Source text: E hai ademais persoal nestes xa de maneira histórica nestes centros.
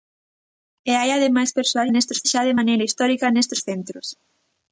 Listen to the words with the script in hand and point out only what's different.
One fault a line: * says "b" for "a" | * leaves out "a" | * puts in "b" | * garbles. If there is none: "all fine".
all fine